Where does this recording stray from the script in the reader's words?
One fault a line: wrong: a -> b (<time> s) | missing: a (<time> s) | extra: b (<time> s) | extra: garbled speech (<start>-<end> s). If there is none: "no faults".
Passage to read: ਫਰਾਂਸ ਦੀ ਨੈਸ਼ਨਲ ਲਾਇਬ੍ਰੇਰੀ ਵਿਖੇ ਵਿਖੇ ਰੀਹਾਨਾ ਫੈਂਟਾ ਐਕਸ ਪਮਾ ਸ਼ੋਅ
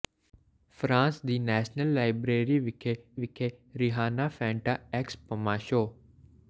no faults